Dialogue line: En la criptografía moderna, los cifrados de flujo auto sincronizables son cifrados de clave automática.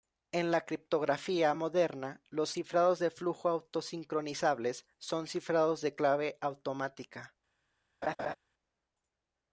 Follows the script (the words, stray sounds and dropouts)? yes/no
no